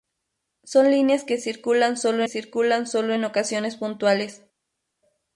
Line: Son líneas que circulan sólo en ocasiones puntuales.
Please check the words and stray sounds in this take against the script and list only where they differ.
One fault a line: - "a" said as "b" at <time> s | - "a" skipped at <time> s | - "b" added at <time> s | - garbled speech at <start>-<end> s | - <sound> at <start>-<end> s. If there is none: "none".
- "circulan sólo" added at 2.3 s